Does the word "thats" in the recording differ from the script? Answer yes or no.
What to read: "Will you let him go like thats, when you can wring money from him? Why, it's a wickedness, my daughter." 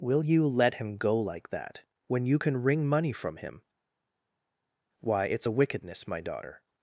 yes